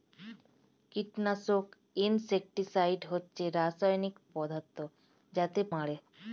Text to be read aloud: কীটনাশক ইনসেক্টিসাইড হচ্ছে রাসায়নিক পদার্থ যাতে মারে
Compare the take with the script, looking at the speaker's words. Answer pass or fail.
pass